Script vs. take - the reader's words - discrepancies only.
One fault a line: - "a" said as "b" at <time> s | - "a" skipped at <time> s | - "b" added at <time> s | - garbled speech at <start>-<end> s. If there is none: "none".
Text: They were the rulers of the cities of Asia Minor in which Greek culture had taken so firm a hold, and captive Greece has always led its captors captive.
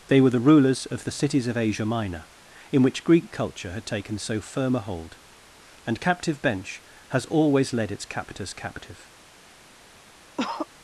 - "Greece" said as "Bench" at 6.4 s